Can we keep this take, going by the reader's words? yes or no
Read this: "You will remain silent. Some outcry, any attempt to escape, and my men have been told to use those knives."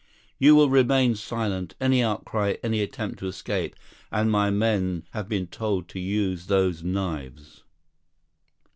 no